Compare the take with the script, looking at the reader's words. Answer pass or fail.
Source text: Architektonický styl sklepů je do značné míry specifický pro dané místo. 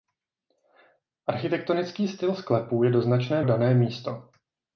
fail